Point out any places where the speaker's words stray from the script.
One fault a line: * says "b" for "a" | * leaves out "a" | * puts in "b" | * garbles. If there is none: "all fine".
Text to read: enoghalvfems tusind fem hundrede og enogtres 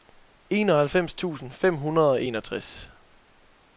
all fine